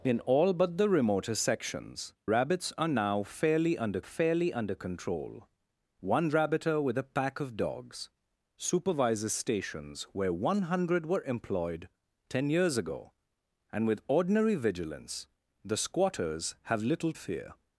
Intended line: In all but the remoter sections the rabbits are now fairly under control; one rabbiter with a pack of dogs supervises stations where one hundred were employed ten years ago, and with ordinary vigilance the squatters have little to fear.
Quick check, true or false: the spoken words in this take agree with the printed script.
false